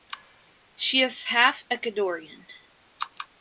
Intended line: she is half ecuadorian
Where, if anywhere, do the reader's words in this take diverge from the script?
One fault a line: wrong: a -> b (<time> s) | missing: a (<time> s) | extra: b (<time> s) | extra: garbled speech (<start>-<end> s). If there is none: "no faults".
no faults